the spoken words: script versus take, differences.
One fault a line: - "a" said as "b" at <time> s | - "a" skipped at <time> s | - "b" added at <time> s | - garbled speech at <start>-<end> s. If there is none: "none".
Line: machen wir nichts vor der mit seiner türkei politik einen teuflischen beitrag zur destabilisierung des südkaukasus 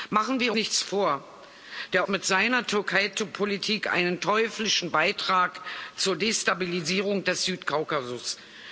none